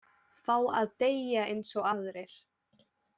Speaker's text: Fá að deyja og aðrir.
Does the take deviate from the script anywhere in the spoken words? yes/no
yes